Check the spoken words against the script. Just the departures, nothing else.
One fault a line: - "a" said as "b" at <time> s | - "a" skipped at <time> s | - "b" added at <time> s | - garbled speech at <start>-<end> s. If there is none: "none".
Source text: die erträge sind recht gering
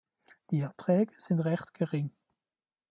none